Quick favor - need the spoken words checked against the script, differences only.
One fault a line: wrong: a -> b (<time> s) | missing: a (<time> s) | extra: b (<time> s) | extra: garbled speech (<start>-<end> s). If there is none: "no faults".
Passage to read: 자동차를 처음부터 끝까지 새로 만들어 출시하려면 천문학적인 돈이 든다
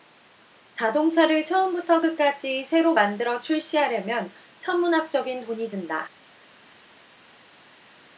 no faults